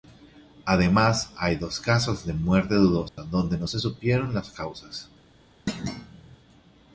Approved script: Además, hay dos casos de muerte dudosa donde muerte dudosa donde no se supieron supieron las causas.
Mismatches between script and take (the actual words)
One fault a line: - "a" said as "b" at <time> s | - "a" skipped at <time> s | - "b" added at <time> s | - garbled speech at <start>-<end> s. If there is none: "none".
- "muerte dudosa donde" skipped at 3.6 s
- "supieron" skipped at 4.3 s